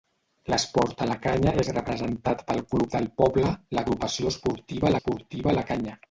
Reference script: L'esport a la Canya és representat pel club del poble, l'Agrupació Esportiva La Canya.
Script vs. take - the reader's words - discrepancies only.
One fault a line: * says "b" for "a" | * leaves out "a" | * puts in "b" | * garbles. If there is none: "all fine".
* puts in "Esportiva"